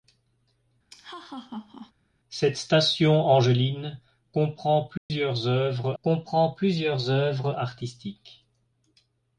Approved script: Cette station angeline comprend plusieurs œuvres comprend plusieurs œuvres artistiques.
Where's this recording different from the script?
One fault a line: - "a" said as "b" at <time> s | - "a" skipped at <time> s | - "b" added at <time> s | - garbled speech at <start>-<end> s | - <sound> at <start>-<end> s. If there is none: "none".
- laugh at 0.9-1.9 s
- dropout at 5.0-5.1 s